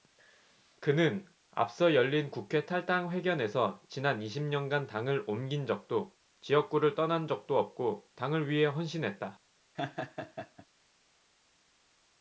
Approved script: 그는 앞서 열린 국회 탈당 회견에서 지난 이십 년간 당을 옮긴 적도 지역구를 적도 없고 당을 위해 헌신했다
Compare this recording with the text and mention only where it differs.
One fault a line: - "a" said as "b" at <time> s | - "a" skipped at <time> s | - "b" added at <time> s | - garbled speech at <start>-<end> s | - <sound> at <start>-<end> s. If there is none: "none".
- "떠난" added at 6.9 s
- laugh at 9.7-10.7 s